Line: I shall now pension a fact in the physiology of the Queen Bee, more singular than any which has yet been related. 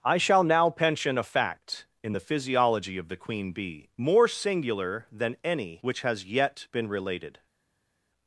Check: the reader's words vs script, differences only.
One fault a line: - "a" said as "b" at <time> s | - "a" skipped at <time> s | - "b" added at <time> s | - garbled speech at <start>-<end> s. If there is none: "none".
none